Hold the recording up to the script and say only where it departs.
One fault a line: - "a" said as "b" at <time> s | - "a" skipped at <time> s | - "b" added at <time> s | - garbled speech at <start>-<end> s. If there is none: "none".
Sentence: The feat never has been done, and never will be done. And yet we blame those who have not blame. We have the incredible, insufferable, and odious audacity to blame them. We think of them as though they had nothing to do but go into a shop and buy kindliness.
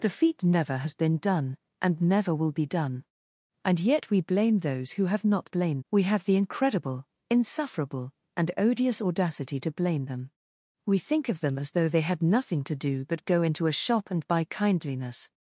none